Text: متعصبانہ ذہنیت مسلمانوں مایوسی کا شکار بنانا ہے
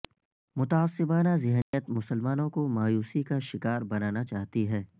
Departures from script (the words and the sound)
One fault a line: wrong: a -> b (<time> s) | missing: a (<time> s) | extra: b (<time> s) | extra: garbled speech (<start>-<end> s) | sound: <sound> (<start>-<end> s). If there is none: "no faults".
sound: dropout (1.6-1.7 s)
extra: کو (2.5 s)
extra: چاہتی (4.2 s)